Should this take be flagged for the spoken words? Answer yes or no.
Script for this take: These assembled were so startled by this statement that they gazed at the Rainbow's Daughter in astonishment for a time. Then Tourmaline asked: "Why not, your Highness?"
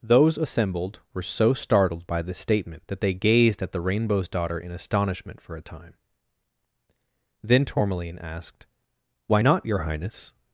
yes